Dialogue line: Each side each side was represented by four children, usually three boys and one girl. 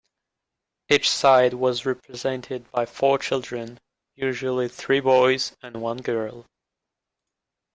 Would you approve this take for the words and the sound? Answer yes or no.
no